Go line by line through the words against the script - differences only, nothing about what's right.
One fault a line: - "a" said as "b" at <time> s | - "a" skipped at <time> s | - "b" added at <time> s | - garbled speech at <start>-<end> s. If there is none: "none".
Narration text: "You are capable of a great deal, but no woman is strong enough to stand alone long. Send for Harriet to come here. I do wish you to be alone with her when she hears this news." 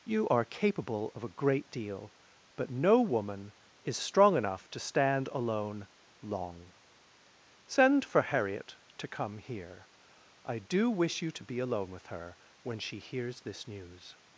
none